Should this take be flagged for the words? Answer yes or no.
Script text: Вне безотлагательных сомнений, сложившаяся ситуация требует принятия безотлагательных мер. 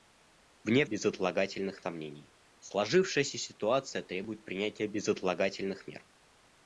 no